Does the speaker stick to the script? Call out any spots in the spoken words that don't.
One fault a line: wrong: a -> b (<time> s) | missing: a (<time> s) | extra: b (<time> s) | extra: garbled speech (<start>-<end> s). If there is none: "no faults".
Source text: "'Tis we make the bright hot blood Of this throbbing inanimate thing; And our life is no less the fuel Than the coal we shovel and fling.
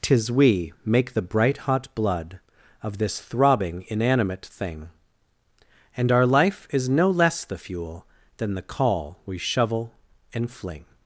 wrong: coal -> call (8.6 s)